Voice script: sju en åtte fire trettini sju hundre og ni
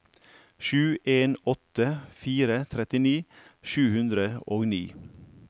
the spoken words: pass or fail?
pass